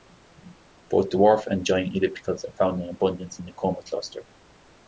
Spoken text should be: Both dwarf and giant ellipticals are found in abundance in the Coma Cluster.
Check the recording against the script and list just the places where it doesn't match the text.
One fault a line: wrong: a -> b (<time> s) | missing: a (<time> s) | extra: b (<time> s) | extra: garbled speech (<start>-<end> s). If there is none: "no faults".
no faults